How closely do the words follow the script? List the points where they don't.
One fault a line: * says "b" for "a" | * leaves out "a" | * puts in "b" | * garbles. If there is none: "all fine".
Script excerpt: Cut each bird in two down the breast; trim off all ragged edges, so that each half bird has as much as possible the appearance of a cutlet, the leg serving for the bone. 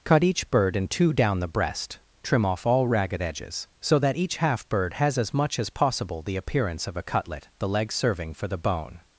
all fine